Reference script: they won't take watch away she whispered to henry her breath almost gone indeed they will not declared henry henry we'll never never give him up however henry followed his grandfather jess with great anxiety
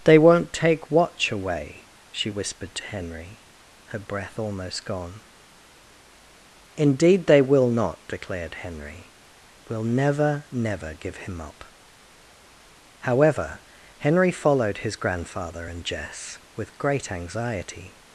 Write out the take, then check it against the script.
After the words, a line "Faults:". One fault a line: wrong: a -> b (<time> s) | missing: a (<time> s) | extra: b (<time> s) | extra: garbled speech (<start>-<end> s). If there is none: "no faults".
they won't take watch away she whispered to henry her breath almost gone indeed they will not declared henry we'll never never give him up however henry followed his grandfather and jess with great anxiety
Faults:
missing: henry (9.1 s)
extra: and (15.7 s)